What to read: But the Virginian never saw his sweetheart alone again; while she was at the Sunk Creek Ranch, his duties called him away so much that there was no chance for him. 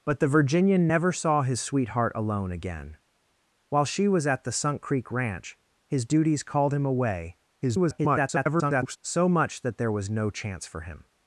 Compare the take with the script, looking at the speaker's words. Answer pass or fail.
fail